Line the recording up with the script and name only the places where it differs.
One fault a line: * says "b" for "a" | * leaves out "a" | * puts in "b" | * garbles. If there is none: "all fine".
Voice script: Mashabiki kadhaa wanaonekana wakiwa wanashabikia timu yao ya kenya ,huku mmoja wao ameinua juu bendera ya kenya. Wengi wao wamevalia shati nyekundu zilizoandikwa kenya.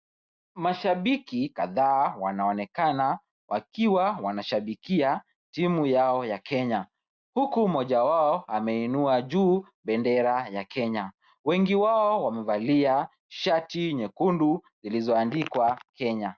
all fine